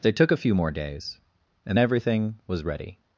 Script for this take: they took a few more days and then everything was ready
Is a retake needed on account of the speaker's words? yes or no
yes